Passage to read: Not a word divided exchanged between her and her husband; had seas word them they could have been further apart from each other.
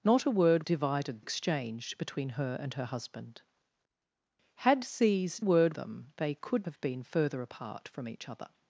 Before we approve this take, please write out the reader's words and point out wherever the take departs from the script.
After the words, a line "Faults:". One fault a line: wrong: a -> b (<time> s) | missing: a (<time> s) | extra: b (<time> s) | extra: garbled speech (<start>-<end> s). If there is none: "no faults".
Not a word divided exchanged between her and her husband; had seas word them they could have been further apart from each other.
Faults:
no faults